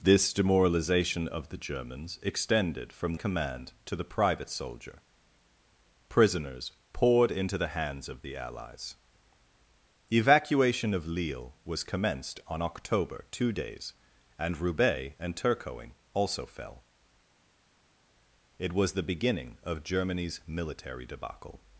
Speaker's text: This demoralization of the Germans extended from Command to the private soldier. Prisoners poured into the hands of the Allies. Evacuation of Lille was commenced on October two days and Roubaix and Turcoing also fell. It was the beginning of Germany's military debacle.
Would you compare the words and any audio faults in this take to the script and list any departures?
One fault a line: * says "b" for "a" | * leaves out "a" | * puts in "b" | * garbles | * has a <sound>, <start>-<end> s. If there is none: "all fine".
all fine